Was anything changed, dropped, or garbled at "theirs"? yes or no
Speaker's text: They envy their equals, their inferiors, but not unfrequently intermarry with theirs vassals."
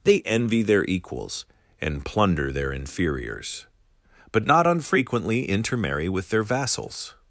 yes